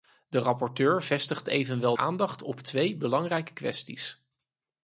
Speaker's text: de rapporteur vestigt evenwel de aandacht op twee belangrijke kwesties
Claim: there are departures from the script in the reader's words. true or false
true